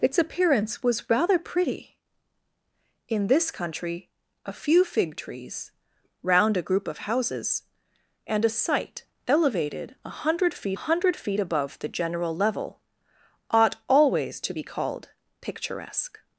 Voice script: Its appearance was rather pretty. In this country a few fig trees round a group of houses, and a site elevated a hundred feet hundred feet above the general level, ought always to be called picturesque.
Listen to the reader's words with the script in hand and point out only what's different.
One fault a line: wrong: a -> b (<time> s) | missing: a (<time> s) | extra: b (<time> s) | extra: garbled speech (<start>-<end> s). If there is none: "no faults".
no faults